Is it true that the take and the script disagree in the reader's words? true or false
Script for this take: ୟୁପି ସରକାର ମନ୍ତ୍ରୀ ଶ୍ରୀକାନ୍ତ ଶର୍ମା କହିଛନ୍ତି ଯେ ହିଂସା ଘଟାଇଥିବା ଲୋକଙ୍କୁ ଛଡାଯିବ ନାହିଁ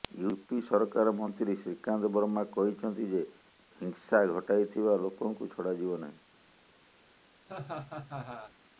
false